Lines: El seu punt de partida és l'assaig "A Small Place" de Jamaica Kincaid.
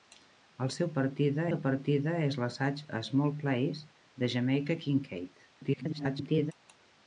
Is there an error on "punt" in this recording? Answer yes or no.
yes